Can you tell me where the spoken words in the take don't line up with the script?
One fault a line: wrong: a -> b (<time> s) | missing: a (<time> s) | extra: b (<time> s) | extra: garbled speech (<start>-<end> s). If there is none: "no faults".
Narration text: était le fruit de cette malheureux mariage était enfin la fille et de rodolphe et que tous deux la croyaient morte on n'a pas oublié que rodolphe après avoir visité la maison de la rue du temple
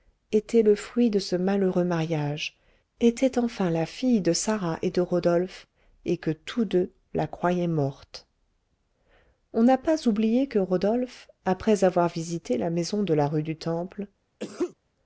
wrong: cette -> ce (1.2 s)
extra: de sarah (4.2 s)